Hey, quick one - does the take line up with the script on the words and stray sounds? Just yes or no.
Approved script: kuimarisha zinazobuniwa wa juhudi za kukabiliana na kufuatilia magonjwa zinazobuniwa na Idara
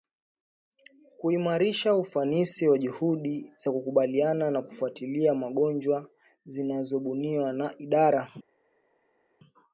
no